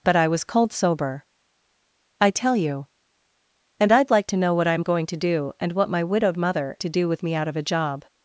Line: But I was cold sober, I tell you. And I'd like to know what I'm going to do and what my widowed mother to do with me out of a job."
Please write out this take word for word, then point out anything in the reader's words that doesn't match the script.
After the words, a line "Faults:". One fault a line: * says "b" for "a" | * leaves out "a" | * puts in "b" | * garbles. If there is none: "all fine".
But I was cold sober, I tell you. And I'd like to know what I'm going to do and what my widowed mother to do with me out of a job."
Faults:
all fine